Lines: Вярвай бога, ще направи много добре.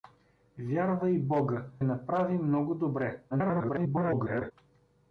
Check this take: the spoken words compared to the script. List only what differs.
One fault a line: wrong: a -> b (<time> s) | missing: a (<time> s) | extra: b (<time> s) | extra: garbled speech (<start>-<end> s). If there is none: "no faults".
missing: ще (1.7 s)
extra: garbled speech (3.3-4.5 s)